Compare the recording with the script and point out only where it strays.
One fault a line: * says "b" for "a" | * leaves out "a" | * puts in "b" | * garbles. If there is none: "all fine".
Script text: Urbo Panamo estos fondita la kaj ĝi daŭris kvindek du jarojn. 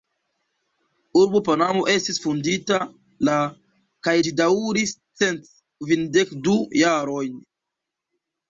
* says "estis" for "estos"
* puts in "cent"